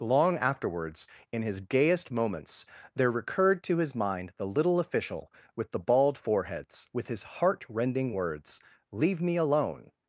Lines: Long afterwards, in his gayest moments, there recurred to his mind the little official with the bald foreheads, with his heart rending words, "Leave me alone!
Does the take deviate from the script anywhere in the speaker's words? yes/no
no